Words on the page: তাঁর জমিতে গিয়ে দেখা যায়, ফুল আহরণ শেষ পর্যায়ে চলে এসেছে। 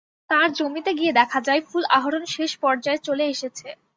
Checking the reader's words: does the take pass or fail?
pass